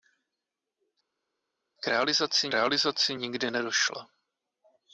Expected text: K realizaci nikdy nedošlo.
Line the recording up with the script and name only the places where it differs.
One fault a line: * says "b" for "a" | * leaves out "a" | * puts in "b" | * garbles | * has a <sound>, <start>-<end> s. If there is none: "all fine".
* puts in "realizaci"